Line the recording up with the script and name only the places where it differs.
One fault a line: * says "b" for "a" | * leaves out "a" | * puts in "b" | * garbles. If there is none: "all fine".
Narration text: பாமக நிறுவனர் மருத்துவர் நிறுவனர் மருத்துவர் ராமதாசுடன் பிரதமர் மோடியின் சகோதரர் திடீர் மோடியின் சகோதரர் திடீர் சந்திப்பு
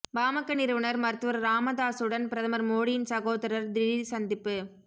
* leaves out "நிறுவனர் மருத்துவர்"
* leaves out "மோடியின் சகோதரர் திடீர்"